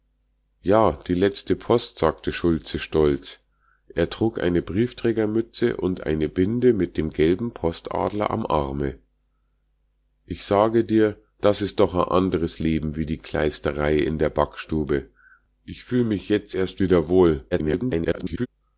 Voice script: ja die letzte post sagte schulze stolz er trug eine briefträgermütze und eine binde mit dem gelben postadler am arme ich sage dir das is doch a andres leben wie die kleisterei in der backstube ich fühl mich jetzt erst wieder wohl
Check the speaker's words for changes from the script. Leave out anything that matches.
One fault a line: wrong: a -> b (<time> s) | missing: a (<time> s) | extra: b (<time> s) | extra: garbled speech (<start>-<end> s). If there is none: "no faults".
extra: garbled speech (17.5-18.5 s)